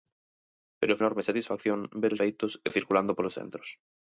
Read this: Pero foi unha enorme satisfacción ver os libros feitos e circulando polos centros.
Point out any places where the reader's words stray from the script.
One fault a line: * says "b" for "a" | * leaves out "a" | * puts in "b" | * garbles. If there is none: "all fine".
* leaves out "foi unha"
* leaves out "libros"